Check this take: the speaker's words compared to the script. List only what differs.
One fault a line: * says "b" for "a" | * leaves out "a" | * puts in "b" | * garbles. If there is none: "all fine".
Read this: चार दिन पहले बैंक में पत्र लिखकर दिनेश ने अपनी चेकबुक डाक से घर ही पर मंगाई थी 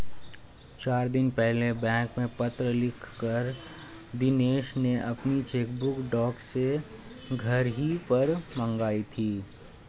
all fine